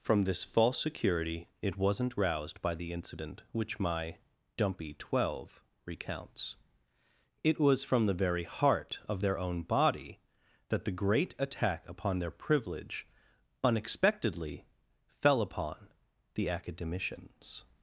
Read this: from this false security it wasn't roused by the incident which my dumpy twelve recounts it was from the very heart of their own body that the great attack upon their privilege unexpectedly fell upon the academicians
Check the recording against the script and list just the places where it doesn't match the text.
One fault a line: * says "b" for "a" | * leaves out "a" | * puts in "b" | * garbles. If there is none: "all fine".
all fine